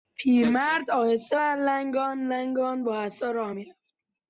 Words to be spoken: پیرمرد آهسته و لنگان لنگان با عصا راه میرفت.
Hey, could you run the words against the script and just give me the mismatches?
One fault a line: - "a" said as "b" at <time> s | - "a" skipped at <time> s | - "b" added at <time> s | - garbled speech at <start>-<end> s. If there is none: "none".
none